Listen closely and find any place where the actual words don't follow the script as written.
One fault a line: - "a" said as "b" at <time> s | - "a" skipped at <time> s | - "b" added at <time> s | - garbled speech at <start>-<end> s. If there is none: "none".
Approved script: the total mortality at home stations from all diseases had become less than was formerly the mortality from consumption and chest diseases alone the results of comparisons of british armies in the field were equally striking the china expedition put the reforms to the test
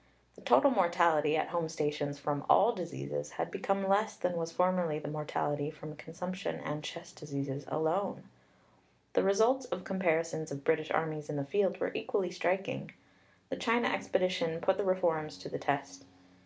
none